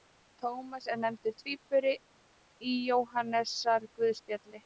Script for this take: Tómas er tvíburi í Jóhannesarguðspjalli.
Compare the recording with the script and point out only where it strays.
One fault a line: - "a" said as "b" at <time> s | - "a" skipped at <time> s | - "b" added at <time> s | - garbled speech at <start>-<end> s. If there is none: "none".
- "nefndur" added at 1.0 s